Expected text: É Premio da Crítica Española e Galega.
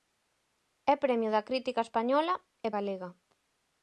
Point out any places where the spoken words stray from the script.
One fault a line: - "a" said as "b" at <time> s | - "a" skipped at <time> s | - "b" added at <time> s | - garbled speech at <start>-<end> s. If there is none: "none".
none